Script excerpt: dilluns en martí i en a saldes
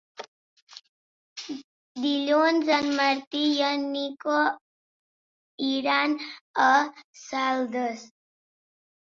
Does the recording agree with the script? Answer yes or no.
no